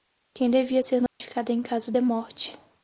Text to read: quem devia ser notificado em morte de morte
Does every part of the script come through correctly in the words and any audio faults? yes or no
no